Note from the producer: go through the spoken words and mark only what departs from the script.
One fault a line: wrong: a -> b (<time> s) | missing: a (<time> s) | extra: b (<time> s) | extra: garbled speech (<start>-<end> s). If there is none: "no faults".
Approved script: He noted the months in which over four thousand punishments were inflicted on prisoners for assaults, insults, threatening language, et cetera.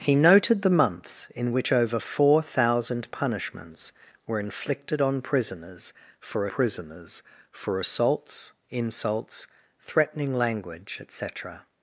extra: prisoners for (6.5 s)